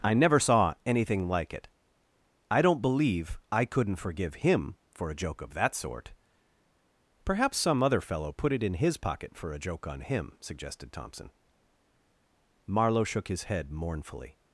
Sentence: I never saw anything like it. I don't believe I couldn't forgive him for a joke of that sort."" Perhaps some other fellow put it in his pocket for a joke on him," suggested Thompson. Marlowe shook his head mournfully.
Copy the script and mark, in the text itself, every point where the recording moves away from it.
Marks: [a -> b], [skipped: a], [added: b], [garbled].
I never saw anything like it. I don't believe I couldn't forgive him for a joke of that sort."" Perhaps some other fellow put it in his pocket for a joke on him," suggested Thompson. Marlowe shook his head mournfully.